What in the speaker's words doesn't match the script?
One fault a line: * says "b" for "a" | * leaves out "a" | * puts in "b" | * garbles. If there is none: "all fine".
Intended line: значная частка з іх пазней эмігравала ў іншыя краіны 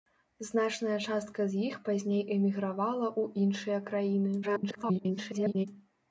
* garbles